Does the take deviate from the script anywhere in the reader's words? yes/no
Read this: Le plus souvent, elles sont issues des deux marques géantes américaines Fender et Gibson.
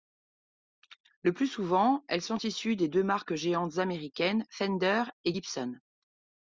no